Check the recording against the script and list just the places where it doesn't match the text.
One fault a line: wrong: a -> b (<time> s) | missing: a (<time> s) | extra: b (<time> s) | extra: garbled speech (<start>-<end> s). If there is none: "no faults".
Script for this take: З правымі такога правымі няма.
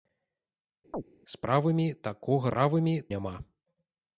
no faults